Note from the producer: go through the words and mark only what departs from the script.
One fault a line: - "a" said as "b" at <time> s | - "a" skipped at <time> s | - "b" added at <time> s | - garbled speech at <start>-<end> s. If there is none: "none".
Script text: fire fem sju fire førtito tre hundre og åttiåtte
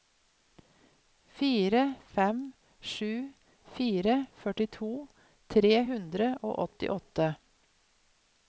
none